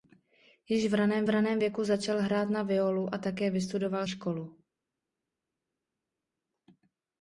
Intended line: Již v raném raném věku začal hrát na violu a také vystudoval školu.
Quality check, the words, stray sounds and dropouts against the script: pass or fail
pass